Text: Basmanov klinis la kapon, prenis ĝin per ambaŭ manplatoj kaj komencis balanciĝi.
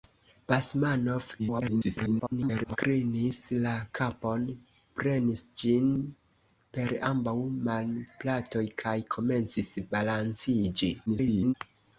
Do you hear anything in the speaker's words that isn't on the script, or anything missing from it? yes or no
yes